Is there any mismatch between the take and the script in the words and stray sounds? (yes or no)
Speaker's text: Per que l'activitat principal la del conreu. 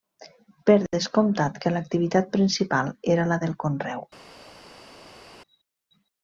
yes